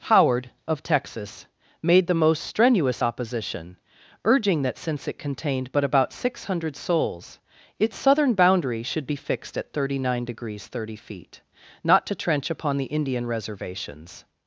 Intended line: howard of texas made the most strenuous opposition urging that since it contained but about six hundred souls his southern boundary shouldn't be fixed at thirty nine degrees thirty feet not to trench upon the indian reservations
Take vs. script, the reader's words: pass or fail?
fail